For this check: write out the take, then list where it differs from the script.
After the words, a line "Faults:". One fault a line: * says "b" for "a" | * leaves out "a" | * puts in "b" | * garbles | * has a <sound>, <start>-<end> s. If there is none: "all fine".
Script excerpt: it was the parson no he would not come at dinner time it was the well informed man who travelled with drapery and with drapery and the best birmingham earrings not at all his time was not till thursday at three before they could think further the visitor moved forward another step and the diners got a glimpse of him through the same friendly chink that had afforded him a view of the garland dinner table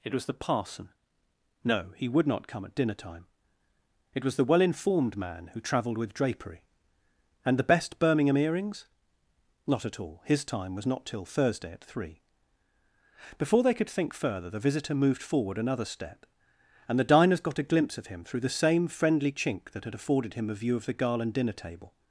it was the parson no he would not come at dinner time it was the well informed man who travelled with drapery and the best birmingham earrings not at all his time was not till thursday at three before they could think further the visitor moved forward another step and the diners got a glimpse of him through the same friendly chink that had afforded him a view of the garland dinner table
Faults:
* leaves out "with drapery and"